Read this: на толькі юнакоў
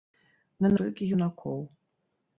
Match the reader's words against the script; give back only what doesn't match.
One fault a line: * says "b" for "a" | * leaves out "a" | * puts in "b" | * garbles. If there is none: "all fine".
all fine